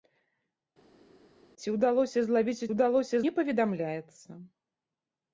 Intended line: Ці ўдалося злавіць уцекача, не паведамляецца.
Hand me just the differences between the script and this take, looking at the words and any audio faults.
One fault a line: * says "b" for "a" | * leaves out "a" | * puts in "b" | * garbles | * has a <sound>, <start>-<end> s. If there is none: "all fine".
* says "ўдалося" for "уцекача"